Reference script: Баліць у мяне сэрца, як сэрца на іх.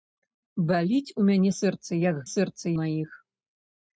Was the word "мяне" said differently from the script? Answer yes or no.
no